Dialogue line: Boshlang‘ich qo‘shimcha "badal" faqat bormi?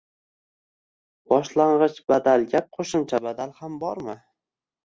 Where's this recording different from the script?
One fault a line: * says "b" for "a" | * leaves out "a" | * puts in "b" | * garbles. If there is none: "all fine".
* puts in "badalga"
* says "ham" for "faqat"